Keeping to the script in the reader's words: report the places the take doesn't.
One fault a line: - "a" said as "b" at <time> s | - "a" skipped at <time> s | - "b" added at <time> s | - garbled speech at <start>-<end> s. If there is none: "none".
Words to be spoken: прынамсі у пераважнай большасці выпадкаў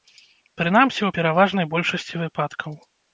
none